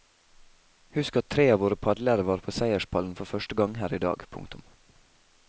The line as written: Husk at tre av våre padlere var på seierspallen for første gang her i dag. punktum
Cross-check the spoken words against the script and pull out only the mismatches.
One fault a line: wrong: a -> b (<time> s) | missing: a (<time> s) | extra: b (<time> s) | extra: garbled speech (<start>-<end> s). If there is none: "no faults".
no faults